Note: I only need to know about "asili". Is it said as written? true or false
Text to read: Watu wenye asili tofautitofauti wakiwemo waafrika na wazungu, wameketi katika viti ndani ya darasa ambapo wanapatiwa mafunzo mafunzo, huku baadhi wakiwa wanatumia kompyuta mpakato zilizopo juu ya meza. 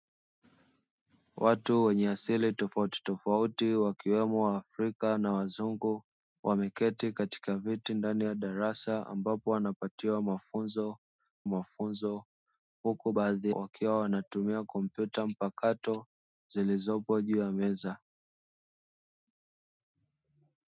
true